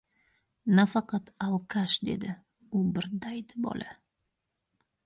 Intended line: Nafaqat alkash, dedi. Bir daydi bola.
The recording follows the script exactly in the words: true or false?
false